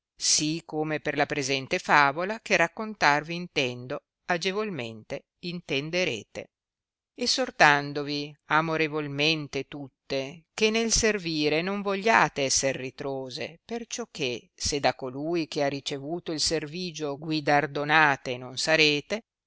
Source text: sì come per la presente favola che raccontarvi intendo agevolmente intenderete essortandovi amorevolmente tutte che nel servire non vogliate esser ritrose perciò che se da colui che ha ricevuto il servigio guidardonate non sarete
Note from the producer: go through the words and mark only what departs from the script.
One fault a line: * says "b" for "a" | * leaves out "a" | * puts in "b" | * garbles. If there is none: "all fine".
all fine